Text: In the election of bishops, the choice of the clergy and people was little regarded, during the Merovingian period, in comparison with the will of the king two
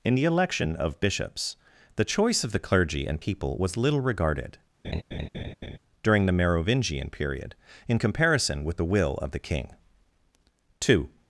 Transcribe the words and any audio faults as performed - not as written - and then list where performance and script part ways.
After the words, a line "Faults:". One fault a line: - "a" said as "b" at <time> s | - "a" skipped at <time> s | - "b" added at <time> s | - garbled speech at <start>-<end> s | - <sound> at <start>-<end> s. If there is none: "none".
In the election of bishops, the choice of the clergy and people was little regarded, during the Merovingian period, in comparison with the will of the king two
Faults:
- laugh at 4.8-5.8 s